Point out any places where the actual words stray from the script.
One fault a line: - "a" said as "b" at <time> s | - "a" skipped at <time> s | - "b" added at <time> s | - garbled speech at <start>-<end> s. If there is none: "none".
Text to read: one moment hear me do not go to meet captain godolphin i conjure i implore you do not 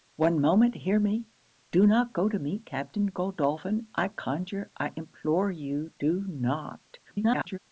- garbled speech at 7.0-7.6 s